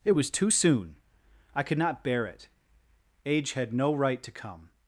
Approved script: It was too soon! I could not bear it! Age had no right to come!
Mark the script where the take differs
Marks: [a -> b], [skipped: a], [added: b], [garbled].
It was too soon! I could not bear it! Age had no right to come!